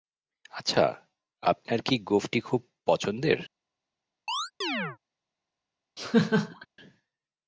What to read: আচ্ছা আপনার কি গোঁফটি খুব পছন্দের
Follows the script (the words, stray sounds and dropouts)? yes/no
no